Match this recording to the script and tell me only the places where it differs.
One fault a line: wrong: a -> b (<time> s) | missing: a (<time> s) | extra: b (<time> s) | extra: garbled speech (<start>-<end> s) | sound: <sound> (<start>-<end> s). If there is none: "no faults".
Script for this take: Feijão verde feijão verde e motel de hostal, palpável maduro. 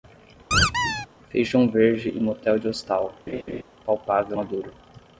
sound: squeak (0.5-1.1 s)
missing: feijão verde (2.1 s)
sound: laugh (3.3-3.6 s)